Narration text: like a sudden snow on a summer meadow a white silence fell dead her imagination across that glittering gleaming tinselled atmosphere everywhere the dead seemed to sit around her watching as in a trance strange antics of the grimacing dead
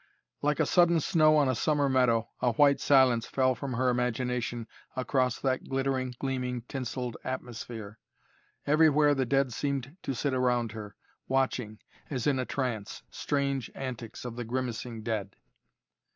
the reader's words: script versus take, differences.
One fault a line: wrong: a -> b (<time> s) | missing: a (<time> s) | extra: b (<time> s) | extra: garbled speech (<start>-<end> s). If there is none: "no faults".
wrong: dead -> from (3.5 s)